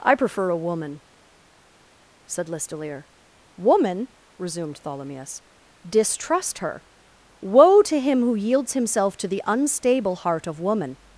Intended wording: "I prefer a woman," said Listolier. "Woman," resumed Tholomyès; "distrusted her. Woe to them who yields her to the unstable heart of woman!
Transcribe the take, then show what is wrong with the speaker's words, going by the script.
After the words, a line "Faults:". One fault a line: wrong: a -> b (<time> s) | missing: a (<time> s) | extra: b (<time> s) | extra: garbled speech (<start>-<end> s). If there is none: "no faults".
"I prefer a woman," said Listolier. "Woman," resumed Tholomyès; "distrust her. Woe to him who yields himself to the unstable heart of woman!
Faults:
wrong: distrusted -> distrust (5.9 s)
wrong: them -> him (8.0 s)
wrong: her -> himself (8.7 s)